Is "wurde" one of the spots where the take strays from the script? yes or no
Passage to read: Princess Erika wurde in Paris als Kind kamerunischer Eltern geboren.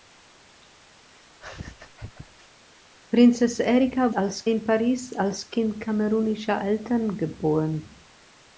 yes